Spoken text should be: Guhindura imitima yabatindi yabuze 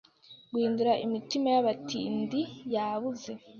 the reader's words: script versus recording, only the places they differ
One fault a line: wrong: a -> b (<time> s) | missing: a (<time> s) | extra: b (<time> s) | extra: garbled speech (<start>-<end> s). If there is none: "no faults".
no faults